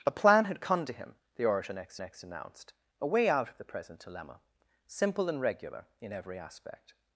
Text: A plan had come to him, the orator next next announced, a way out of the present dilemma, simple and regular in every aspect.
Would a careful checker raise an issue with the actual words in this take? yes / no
no